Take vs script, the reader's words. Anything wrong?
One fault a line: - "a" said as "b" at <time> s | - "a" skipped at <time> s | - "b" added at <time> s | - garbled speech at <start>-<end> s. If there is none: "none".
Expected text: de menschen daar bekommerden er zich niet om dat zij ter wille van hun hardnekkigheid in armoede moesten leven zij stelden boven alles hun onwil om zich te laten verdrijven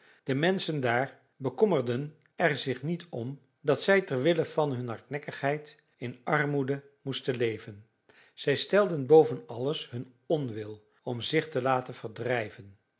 none